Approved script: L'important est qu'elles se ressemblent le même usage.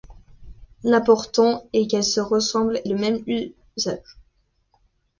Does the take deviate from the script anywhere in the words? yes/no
no